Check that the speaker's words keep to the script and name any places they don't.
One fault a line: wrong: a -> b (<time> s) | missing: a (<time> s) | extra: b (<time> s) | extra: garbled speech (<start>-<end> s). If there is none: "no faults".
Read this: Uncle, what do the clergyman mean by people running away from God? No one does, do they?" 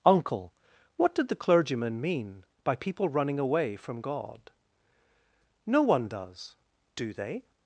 wrong: do -> did (1.1 s)